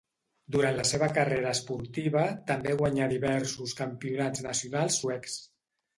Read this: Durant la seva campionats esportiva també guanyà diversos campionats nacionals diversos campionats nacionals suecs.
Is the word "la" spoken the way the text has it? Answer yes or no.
yes